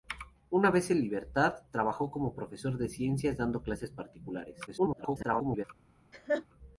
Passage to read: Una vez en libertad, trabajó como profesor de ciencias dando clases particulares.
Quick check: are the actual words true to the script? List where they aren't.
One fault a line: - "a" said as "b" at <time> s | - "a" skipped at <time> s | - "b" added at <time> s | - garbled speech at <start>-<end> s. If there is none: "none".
- garbled speech at 4.7-5.6 s